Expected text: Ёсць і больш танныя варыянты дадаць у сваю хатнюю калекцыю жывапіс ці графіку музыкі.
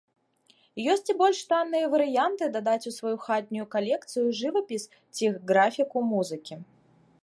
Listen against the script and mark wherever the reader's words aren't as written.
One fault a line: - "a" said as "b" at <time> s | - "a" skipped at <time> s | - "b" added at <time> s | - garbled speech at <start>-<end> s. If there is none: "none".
none